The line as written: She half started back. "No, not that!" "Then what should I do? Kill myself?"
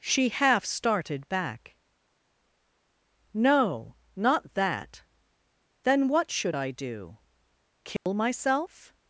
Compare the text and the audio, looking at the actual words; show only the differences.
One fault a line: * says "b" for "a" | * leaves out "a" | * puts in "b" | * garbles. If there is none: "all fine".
all fine